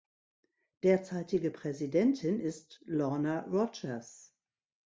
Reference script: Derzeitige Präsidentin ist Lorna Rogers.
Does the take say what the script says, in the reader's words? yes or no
yes